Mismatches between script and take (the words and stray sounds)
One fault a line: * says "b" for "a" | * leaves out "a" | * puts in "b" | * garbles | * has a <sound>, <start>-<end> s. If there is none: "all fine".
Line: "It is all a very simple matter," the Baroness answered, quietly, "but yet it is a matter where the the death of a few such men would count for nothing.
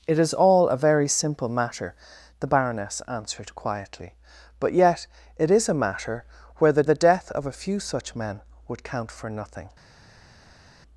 all fine